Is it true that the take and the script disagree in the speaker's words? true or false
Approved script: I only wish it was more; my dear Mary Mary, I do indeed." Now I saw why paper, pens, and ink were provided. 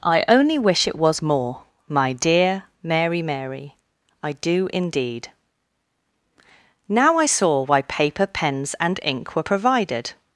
false